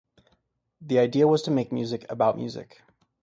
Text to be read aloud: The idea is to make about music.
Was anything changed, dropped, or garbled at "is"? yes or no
yes